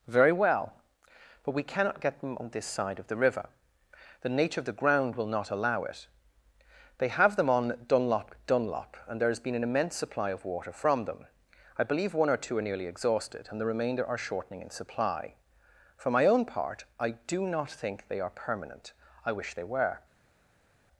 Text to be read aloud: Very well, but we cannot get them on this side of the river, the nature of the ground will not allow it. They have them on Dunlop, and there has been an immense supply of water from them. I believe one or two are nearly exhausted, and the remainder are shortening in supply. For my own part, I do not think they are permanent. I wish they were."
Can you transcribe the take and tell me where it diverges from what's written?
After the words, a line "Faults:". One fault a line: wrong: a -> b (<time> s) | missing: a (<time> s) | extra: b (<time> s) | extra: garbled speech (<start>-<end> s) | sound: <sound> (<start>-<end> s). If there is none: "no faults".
Very well, but we cannot get them on this side of the river, the nature of the ground will not allow it. They have them on Dunlop Dunlop, and there has been an immense supply of water from them. I believe one or two are nearly exhausted, and the remainder are shortening in supply. For my own part, I do not think they are permanent. I wish they were."
Faults:
extra: Dunlop (8.5 s)